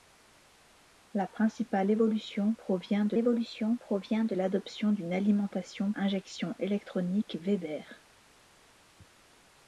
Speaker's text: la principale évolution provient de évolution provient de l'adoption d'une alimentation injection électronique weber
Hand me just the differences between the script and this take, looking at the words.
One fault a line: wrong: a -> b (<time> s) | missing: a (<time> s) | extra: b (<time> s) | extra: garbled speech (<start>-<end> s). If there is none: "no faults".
no faults